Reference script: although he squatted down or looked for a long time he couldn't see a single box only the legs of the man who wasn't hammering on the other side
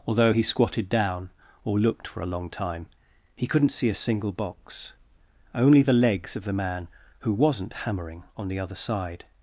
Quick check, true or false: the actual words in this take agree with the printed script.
true